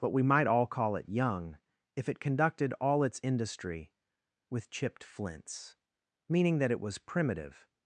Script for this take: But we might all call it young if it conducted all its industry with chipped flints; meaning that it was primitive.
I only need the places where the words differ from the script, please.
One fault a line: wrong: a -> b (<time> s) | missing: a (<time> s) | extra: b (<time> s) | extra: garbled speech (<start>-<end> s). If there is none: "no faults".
no faults